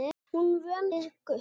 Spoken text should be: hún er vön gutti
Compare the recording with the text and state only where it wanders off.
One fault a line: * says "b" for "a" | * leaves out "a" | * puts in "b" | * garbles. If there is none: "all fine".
all fine